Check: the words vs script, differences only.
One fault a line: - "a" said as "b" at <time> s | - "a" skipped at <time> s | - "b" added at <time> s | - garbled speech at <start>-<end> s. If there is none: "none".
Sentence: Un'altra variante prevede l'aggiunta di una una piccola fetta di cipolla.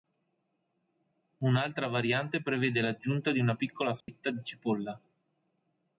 - "una" skipped at 3.5 s